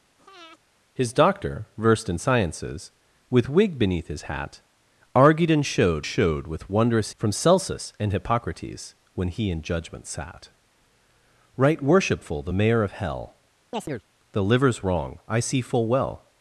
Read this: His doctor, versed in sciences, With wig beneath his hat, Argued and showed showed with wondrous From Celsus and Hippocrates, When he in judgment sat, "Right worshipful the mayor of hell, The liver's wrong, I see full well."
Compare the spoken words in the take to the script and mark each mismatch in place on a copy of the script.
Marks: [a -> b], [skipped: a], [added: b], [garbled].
His doctor, versed in sciences, With wig beneath his hat, Argued and showed showed with wondrous From Celsus and Hippocrates, When he in judgment sat, "Right worshipful the mayor of hell, The liver's wrong, I see full well."